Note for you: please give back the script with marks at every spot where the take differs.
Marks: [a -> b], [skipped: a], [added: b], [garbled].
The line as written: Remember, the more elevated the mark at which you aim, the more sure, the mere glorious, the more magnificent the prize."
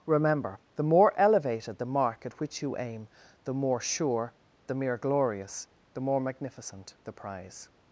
Remember, the more elevated the mark at which you aim, the more sure, the mere glorious, the more magnificent the prize."